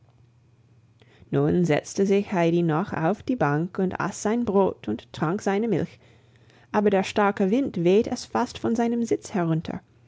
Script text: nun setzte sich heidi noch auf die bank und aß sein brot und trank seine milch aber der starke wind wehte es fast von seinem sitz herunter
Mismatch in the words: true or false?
false